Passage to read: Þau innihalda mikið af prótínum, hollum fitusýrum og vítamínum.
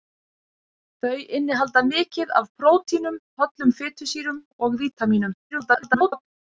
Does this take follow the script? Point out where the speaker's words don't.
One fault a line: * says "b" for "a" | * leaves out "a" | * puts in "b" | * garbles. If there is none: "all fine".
* garbles